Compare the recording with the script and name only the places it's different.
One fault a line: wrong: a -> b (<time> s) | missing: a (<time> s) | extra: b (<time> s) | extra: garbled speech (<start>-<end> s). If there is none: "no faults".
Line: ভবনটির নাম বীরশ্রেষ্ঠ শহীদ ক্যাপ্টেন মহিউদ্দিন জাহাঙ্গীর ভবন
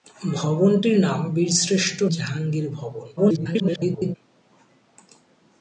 missing: শহীদ ক্যাপ্টেন মহিউদ্দিন (2.0 s)
extra: garbled speech (3.2-4.2 s)